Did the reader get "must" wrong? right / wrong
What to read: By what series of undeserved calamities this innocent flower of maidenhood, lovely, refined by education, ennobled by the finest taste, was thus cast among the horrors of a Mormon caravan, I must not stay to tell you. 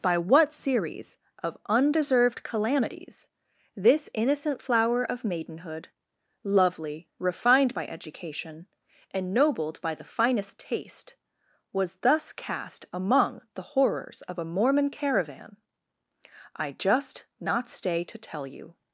wrong